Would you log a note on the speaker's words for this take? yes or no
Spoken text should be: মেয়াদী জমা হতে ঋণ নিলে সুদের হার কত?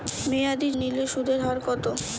yes